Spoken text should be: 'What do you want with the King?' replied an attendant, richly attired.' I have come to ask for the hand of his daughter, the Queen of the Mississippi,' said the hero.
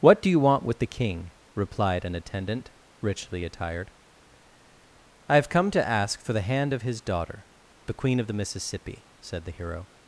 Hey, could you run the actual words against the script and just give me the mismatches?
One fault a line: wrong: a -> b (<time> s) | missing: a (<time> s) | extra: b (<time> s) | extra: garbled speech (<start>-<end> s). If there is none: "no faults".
no faults